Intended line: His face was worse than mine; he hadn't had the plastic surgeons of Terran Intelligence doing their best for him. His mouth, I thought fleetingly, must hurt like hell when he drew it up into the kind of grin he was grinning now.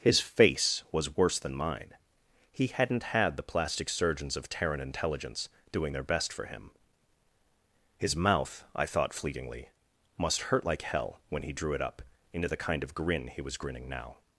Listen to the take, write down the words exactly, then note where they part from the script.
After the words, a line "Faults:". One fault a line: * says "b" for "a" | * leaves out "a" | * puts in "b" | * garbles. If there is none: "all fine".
His face was worse than mine; he hadn't had the plastic surgeons of Terran Intelligence doing their best for him. His mouth, I thought fleetingly, must hurt like hell when he drew it up into the kind of grin he was grinning now.
Faults:
all fine